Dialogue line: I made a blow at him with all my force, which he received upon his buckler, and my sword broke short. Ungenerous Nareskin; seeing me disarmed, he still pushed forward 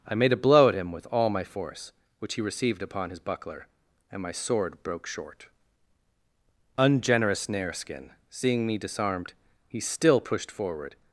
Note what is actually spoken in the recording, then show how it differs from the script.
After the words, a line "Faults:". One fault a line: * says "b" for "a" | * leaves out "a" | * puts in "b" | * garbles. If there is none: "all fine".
I made a blow at him with all my force, which he received upon his buckler, and my sword broke short. Ungenerous Nareskin; seeing me disarmed, he still pushed forward
Faults:
all fine